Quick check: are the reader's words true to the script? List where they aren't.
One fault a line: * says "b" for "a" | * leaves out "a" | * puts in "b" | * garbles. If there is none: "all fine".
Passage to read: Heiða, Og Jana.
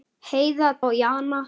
all fine